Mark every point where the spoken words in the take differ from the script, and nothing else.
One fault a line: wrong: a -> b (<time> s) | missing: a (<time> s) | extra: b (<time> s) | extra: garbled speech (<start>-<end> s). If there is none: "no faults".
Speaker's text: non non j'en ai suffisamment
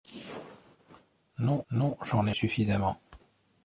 no faults